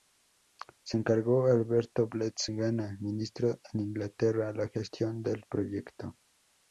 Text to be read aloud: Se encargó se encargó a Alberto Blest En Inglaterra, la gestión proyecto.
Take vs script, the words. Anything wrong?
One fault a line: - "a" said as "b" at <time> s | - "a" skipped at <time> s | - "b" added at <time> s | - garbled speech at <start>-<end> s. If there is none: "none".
- "se encargó" skipped at 1.5 s
- "Gana ministro" added at 2.5 s
- "del" added at 5.2 s